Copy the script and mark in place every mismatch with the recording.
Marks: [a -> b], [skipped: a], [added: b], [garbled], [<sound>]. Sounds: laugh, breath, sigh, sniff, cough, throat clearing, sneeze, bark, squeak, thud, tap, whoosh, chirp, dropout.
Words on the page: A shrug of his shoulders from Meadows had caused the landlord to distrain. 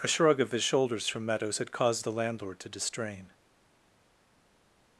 A shrug of his shoulders from Meadows had caused the landlord to distrain.